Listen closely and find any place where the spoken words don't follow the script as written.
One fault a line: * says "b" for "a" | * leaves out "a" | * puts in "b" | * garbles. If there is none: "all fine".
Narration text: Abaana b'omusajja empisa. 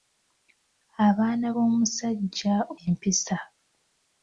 all fine